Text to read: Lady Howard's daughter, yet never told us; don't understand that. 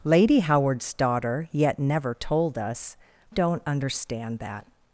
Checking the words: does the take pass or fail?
pass